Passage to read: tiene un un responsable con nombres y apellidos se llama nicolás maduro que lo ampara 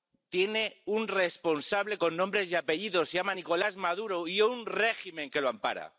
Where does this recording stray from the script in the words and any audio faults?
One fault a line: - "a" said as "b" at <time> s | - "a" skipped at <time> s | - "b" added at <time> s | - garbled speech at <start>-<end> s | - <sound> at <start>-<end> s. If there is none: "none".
- "un" skipped at 1.1 s
- "y un régimen" added at 4.3 s